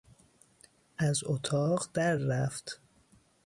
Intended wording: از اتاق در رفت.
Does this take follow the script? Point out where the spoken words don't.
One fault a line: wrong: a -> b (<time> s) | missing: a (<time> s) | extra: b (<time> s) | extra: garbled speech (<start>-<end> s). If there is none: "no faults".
no faults